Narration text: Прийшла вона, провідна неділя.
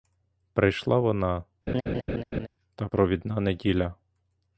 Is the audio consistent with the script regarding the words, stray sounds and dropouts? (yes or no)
no